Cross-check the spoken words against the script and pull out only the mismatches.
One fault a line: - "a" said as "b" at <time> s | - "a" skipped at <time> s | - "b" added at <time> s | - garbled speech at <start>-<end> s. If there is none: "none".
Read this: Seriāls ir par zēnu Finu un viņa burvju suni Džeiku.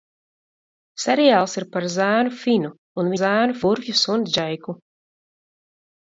- "viņa" said as "zēnu" at 3.2 s